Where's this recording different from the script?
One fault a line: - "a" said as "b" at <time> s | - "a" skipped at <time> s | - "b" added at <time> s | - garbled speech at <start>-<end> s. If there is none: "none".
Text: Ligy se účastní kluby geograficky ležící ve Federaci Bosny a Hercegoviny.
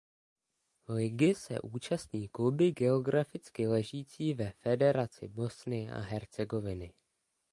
none